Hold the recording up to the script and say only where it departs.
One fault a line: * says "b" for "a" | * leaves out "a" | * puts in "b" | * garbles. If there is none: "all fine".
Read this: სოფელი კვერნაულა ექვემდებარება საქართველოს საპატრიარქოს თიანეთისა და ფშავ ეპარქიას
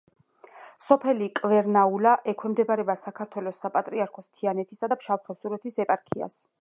* puts in "ხევსურეთის"